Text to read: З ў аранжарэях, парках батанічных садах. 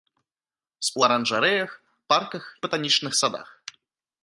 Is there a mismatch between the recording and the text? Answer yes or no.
no